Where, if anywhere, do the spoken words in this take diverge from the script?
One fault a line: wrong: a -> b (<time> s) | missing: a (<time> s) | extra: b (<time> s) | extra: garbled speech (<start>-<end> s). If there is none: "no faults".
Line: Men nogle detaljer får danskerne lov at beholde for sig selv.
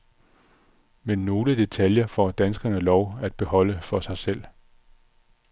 no faults